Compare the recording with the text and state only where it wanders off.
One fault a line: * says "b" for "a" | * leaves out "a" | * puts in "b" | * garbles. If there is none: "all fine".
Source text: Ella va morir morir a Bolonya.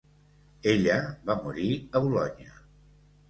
* leaves out "morir"